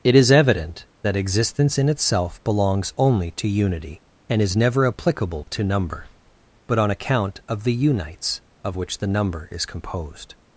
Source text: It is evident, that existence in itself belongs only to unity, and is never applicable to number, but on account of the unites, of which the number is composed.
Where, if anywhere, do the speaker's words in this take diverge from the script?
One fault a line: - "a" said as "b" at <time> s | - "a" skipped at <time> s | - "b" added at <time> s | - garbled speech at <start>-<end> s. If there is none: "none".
none